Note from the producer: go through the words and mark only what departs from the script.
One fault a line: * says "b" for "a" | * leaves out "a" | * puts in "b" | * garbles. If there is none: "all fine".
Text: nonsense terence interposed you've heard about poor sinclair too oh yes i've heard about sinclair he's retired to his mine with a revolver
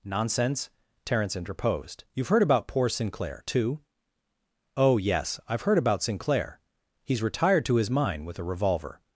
all fine